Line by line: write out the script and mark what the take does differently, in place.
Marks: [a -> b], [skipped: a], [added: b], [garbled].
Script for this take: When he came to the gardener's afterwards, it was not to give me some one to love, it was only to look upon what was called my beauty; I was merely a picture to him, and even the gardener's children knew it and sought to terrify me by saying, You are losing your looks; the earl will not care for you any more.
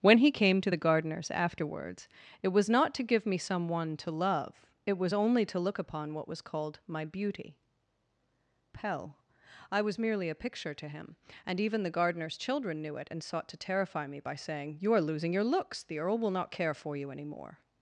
When he came to the gardener's afterwards, it was not to give me some one to love, it was only to look upon what was called my beauty; [added: pell] I was merely a picture to him, and even the gardener's children knew it and sought to terrify me by saying, You are losing your looks; the earl will not care for you any more.